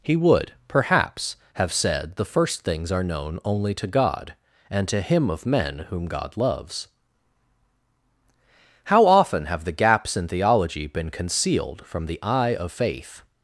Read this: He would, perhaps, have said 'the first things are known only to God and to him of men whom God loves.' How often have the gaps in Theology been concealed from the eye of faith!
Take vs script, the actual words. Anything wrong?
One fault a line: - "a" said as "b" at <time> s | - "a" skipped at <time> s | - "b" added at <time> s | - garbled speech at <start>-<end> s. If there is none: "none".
none